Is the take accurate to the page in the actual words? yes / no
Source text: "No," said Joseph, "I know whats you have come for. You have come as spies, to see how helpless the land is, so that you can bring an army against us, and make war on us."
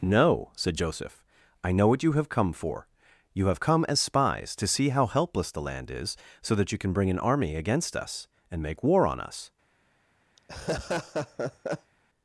no